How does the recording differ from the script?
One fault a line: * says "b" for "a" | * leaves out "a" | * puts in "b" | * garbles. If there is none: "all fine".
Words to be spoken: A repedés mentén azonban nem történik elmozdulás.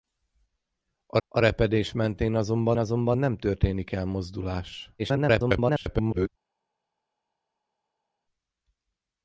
* puts in "a"
* puts in "azonban"
* garbles